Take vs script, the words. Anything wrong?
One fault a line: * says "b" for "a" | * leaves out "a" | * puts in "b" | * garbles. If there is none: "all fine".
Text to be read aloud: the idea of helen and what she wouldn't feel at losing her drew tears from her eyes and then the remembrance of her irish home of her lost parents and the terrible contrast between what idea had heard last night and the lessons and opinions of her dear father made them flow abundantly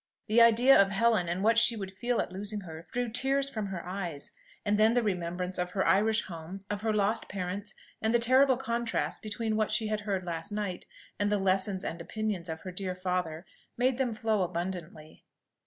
* says "would" for "wouldn't"
* says "she" for "idea"